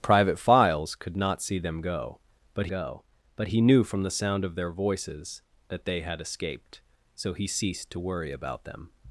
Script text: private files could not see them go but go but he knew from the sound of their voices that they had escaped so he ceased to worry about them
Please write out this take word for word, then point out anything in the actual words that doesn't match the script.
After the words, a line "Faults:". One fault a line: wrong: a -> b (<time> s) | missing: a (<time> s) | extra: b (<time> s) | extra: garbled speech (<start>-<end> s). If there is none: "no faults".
private files could not see them go but go but he knew from the sound of their voices that they had escaped so he ceased to worry about them
Faults:
no faults